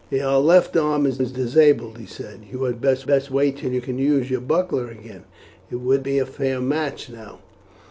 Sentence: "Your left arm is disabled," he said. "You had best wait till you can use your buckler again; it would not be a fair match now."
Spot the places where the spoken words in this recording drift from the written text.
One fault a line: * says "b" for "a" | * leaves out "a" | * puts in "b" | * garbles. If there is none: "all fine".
* puts in "is"
* puts in "best"
* leaves out "not"